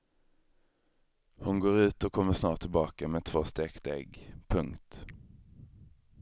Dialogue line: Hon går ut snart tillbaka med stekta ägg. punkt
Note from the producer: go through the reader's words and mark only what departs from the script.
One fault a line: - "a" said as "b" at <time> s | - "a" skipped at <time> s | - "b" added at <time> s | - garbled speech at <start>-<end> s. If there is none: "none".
- "och kommer" added at 2.0 s
- "två" added at 3.2 s